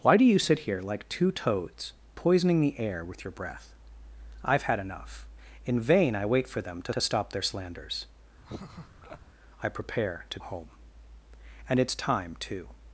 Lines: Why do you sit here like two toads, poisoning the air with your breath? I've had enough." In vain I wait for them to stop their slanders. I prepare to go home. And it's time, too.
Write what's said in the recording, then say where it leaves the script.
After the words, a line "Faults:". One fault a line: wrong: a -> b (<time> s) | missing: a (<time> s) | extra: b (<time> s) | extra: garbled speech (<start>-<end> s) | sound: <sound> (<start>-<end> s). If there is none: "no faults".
Why do you sit here like two toads, poisoning the air with your breath? I've had enough." In vain I wait for them to to stop their slanders. I prepare to home. And it's time, too.
Faults:
extra: to (6.9 s)
sound: laugh (8.4-9.2 s)
missing: go (10.4 s)